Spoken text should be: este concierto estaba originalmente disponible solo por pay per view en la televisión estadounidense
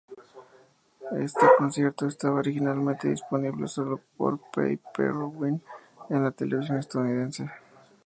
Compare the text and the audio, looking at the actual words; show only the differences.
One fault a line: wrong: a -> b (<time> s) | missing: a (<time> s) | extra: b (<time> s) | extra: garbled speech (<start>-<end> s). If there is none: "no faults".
no faults